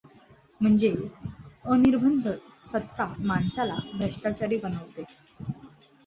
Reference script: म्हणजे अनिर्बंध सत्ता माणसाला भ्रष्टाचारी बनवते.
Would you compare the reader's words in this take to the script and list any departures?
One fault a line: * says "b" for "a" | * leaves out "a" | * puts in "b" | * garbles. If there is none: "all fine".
all fine